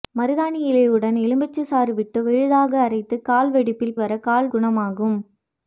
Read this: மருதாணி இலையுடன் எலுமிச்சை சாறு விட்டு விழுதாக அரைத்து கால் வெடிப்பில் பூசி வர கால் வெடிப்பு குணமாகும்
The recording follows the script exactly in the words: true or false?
false